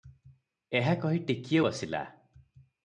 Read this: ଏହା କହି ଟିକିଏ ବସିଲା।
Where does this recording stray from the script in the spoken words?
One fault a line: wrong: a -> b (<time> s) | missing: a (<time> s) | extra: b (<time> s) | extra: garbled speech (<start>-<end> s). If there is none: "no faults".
no faults